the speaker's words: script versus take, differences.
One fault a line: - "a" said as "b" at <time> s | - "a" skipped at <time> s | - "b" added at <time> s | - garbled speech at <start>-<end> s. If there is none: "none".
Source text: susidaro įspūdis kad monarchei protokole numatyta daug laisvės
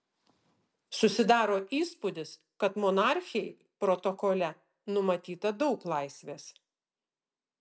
none